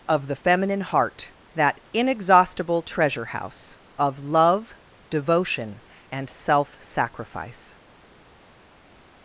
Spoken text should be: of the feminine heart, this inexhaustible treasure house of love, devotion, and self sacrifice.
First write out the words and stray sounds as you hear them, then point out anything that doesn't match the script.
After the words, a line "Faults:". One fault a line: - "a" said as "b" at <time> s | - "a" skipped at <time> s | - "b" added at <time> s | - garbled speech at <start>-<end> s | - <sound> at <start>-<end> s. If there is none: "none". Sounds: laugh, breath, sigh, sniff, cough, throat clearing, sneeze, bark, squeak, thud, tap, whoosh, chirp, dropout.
of the feminine heart, that inexhaustible treasure house of love, devotion, and self sacrifice.
Faults:
- "this" said as "that" at 1.5 s